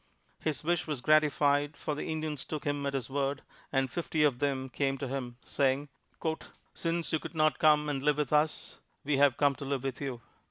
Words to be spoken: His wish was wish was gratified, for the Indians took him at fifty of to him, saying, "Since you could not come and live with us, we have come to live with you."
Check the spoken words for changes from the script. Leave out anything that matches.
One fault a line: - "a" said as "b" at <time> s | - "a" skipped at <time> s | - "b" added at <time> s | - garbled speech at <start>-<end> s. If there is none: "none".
- "wish was" skipped at 1.0 s
- "his word and" added at 2.9 s
- "them came" added at 4.4 s